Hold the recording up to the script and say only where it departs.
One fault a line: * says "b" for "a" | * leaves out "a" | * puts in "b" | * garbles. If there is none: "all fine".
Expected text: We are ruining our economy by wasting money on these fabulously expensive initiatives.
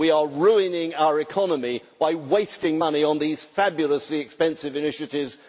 all fine